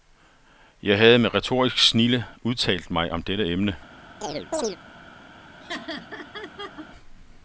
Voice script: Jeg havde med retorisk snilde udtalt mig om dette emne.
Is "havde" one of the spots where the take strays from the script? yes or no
no